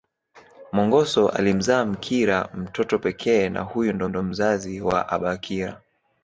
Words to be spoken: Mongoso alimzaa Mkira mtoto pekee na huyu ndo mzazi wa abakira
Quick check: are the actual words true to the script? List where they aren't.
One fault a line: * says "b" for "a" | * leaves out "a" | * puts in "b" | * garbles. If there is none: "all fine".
* puts in "ndo"